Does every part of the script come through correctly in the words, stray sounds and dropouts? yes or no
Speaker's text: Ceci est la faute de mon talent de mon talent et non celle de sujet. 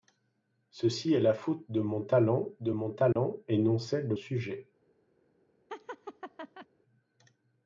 no